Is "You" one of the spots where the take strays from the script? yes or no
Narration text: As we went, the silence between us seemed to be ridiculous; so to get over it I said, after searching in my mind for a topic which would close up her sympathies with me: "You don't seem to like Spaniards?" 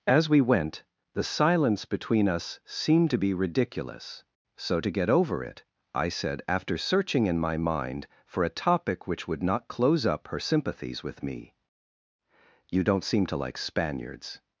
no